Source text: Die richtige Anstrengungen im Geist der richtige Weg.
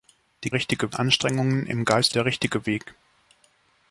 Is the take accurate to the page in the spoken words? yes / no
yes